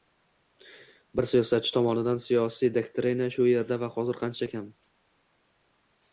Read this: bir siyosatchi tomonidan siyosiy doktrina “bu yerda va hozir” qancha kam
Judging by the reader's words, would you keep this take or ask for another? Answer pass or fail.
fail